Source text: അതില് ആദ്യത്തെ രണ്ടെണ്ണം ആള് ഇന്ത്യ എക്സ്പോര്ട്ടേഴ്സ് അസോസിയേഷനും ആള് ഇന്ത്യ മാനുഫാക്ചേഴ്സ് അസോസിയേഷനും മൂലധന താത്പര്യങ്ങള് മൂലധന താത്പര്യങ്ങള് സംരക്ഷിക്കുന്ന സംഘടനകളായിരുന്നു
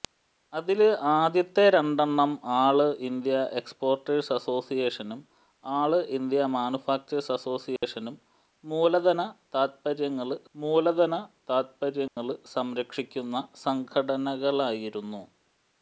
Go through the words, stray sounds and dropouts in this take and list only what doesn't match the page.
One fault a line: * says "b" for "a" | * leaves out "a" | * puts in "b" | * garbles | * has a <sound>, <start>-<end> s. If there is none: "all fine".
* has a dropout, 7.8-7.8 s
* has a dropout, 12.1-12.2 s